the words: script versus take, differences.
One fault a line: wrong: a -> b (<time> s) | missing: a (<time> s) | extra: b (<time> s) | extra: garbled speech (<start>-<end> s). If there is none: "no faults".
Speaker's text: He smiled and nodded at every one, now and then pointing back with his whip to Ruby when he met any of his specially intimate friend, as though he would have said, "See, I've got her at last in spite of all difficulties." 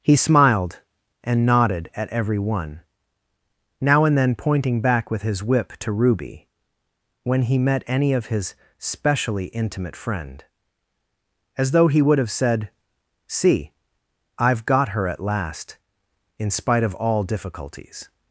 no faults